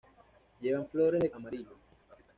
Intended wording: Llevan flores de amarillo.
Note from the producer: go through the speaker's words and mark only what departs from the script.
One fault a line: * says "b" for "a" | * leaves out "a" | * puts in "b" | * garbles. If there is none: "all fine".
all fine